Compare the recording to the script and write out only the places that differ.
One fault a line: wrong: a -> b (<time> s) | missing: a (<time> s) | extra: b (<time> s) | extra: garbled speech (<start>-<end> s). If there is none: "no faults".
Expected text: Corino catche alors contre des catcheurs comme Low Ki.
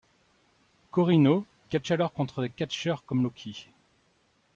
no faults